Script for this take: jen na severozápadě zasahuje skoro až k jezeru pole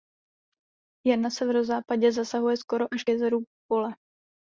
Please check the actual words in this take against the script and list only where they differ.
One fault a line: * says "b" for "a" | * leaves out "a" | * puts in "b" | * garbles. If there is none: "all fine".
all fine